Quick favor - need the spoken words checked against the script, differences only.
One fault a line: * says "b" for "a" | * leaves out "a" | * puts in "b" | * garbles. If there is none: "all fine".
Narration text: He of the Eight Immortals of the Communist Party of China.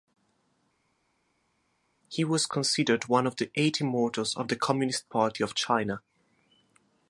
* puts in "was considered one"